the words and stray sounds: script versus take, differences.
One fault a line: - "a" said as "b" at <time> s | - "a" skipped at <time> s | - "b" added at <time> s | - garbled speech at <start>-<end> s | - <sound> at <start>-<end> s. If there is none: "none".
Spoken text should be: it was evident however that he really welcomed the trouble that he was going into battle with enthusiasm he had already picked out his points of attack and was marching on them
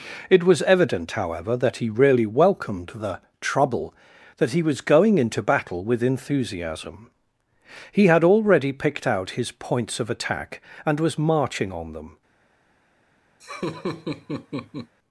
- laugh at 13.4-14.9 s